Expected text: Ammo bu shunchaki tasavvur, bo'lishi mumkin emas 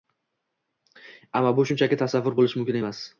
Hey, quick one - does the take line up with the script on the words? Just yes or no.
yes